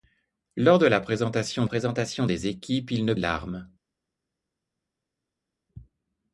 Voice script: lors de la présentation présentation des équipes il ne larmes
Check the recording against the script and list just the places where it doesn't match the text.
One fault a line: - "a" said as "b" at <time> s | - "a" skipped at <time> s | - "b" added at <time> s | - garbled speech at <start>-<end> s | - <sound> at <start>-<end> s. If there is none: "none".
none